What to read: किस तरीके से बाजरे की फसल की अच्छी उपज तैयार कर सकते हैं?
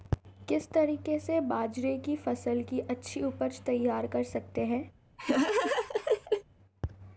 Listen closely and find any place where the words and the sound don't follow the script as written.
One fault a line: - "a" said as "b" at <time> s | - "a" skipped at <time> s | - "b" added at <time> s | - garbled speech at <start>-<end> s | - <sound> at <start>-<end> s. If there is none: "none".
- laugh at 5.2-6.4 s